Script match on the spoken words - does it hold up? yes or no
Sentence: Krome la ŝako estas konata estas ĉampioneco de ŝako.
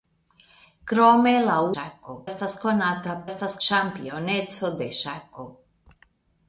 yes